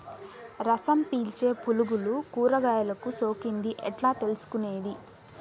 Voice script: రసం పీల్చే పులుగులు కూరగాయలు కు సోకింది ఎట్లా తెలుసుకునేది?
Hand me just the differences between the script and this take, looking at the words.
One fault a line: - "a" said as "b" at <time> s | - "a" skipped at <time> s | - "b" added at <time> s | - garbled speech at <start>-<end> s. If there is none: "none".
none